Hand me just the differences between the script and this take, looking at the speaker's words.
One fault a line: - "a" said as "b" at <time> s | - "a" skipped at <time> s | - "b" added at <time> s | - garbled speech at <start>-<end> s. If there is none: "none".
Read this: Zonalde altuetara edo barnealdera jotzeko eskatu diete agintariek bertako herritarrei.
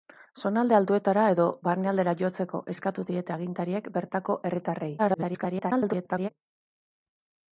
- garbled speech at 5.0-6.3 s